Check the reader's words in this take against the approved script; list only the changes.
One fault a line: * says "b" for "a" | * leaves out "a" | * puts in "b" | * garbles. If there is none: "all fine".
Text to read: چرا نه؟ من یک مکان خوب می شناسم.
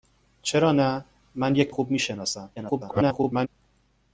* leaves out "مکان"
* garbles